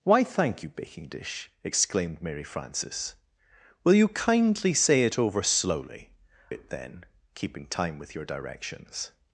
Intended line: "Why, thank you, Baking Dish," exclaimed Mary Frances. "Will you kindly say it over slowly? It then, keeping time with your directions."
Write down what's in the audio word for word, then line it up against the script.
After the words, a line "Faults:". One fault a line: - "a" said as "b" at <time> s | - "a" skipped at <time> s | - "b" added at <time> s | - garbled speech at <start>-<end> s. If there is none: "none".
"Why, thank you, Baking Dish," exclaimed Mary Frances. "Will you kindly say it over slowly? It then, keeping time with your directions."
Faults:
none